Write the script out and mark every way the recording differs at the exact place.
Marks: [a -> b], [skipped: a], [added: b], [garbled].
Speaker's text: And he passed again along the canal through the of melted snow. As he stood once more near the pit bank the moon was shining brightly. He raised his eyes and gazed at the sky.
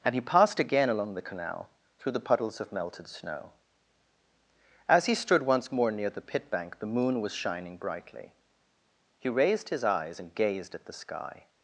And he passed again along the canal through the [added: puddles] of melted snow. As he stood once more near the pit bank the moon was shining brightly. He raised his eyes and gazed at the sky.